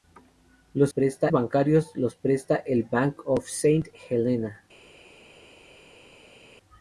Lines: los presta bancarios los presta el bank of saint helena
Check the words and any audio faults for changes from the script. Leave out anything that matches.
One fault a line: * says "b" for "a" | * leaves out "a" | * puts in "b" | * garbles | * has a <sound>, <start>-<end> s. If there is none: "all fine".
all fine